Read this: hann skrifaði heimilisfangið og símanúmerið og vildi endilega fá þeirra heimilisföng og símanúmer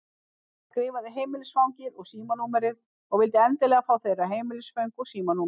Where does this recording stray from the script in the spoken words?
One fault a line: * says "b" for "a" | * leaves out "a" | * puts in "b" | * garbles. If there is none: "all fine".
all fine